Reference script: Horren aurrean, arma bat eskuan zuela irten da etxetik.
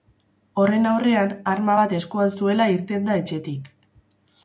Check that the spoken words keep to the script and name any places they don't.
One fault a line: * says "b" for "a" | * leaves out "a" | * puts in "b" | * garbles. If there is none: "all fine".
all fine